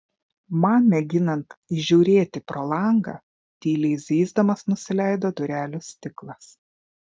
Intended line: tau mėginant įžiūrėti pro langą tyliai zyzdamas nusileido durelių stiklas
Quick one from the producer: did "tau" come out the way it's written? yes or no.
no